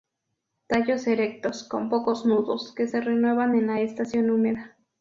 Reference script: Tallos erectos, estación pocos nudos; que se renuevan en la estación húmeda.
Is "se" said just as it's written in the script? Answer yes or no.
yes